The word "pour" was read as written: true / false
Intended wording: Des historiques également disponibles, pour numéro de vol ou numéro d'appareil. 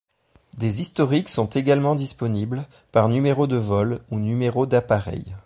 false